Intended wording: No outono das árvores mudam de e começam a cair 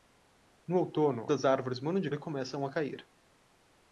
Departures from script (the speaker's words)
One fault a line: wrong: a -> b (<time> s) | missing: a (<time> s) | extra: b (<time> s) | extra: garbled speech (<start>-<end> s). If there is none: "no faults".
no faults